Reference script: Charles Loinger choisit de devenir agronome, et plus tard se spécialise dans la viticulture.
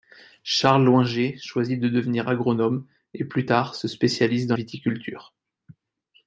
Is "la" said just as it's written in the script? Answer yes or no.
no